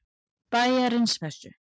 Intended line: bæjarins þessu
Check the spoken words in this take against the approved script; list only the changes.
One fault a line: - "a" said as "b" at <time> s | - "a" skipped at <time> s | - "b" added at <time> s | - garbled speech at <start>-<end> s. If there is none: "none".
none